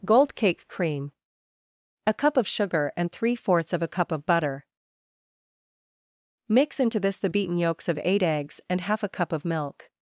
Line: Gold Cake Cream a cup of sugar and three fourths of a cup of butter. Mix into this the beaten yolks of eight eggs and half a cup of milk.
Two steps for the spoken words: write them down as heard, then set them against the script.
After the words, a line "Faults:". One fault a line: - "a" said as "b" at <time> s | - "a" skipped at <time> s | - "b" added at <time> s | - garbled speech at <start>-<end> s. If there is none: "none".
Gold Cake Cream a cup of sugar and three fourths of a cup of butter. Mix into this the beaten yolks of eight eggs and half a cup of milk.
Faults:
none